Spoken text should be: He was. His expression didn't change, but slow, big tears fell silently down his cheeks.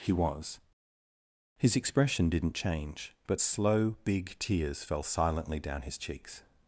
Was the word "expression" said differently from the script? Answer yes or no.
no